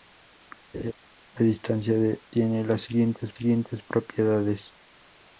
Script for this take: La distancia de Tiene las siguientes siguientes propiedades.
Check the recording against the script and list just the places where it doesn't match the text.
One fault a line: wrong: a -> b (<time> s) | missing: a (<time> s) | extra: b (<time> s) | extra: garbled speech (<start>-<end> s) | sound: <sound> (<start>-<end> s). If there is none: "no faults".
sound: laugh (0.7-0.9 s)